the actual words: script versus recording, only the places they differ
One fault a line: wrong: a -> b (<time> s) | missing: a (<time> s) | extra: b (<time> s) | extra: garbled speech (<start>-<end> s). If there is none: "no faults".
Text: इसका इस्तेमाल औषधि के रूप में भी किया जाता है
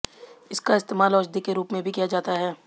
no faults